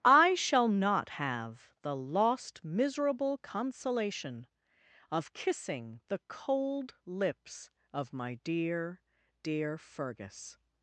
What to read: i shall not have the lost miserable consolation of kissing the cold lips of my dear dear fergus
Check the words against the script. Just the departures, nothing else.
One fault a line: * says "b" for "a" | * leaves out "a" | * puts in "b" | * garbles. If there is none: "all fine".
all fine